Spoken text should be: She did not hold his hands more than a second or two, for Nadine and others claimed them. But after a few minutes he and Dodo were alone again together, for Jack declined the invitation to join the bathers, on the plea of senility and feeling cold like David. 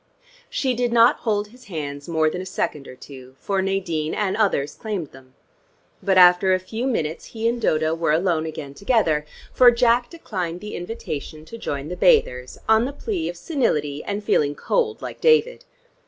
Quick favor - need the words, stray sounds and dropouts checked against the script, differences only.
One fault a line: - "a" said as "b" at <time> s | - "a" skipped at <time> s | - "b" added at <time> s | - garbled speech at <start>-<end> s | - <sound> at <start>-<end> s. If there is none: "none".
none